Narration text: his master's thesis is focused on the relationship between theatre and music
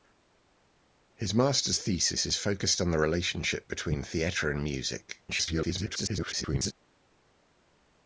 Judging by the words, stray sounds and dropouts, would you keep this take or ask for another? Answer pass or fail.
fail